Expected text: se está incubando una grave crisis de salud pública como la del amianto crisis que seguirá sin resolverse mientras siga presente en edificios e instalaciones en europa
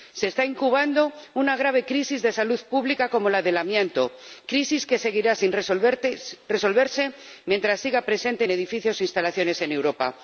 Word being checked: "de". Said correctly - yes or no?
yes